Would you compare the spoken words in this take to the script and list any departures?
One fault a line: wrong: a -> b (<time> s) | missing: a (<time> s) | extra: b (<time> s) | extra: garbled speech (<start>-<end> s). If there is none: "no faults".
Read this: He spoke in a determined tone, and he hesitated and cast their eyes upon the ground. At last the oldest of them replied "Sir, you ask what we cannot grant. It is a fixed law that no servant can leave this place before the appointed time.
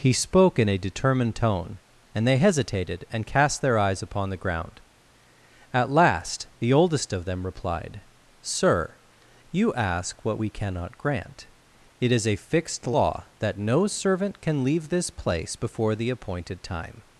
wrong: he -> they (2.3 s)